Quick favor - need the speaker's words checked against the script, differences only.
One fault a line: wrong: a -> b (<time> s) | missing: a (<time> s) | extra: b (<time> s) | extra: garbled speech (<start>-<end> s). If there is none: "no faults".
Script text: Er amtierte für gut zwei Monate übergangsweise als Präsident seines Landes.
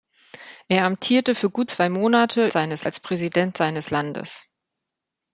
wrong: übergangsweise -> seines (2.5 s)